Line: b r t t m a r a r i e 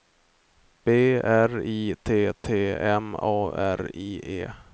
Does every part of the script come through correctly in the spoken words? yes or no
no